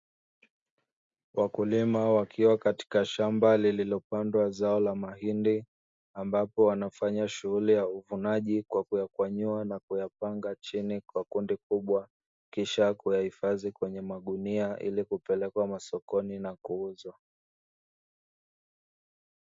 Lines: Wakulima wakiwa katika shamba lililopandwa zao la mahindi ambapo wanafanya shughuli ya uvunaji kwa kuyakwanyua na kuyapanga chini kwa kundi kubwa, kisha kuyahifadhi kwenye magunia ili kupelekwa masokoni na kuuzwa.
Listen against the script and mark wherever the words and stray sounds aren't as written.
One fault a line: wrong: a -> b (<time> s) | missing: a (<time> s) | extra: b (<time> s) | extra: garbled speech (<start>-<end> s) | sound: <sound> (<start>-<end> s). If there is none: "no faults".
no faults